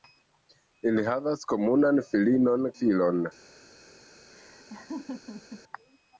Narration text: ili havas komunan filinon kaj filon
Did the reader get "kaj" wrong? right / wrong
wrong